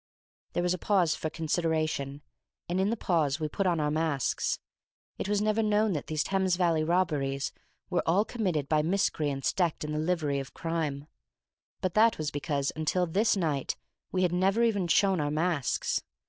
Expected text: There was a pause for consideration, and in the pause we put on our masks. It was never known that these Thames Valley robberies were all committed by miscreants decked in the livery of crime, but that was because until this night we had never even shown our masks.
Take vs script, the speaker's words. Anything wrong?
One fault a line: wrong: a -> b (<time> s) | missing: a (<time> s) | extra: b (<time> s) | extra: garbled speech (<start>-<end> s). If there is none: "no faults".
no faults